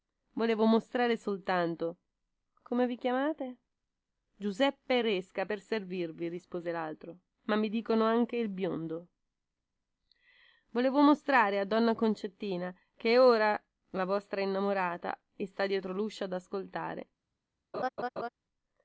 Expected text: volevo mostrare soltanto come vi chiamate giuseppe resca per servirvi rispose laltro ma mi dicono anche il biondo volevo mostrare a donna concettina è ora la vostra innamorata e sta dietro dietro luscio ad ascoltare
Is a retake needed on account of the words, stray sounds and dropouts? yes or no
yes